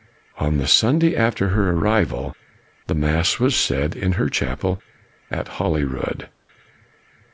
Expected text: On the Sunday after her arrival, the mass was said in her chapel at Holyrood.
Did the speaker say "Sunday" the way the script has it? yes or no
yes